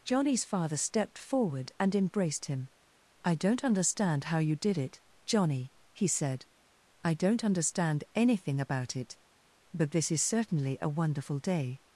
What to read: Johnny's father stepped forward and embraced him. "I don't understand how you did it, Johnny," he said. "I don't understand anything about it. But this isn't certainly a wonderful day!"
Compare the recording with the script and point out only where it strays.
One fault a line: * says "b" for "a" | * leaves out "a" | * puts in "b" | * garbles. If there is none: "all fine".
* says "is" for "isn't"